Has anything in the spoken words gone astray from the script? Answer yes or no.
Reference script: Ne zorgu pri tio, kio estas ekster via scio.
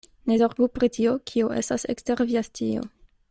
no